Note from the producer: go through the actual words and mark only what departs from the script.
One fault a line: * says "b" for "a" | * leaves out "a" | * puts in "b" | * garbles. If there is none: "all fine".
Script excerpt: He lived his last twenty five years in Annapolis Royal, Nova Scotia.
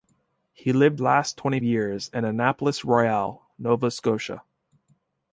* leaves out "his"
* leaves out "five"